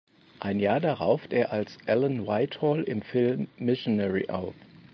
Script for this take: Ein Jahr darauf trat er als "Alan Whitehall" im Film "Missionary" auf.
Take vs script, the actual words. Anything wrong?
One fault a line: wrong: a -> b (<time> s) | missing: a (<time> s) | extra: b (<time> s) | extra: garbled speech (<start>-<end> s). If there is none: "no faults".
missing: trat (1.3 s)